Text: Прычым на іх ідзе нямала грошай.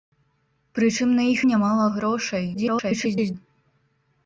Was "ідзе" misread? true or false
true